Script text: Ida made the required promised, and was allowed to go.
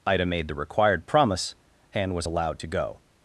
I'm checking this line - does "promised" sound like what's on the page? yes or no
no